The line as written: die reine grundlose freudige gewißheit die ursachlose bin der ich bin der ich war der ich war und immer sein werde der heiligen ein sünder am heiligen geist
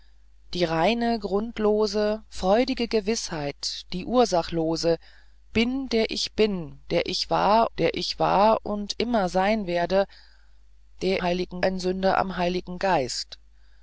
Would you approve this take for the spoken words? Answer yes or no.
yes